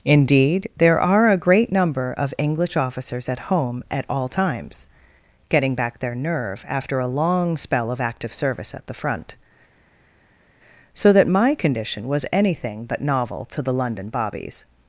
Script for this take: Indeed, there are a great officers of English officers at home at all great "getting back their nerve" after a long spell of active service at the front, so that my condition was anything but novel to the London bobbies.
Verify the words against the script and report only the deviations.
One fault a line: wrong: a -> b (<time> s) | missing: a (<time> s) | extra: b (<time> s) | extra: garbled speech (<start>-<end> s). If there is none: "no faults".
wrong: officers -> number (1.7 s)
wrong: great -> times (4.3 s)